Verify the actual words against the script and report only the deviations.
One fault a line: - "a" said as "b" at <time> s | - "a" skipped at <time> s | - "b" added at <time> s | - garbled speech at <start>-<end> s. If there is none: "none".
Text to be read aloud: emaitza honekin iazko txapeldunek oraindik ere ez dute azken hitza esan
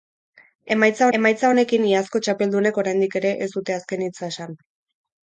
- "emaitza" added at 1.2 s